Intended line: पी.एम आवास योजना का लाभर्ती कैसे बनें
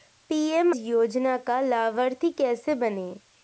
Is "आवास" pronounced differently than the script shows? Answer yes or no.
yes